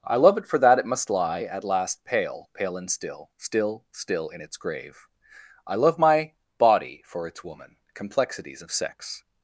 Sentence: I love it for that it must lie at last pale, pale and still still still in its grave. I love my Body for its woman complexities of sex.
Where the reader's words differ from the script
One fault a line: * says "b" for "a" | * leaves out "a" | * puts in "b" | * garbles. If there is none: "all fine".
all fine